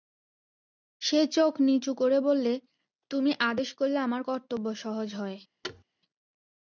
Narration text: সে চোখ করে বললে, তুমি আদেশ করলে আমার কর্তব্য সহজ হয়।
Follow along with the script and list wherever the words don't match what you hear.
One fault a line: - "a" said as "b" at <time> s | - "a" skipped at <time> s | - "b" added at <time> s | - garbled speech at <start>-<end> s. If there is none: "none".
- "নিচু" added at 1.6 s